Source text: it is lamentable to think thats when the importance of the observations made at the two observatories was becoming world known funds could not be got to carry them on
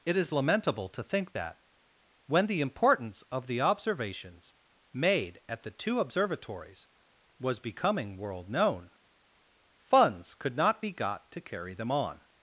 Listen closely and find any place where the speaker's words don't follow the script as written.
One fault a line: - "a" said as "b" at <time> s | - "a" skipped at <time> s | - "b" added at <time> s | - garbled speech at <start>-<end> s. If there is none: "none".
- "thats" said as "that" at 1.3 s